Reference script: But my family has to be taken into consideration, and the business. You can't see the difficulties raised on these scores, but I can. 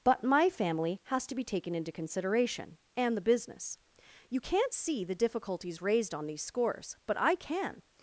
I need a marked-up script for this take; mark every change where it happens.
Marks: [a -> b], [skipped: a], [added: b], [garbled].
But my family has to be taken into consideration, and the business. You can't see the difficulties raised on these scores, but I can.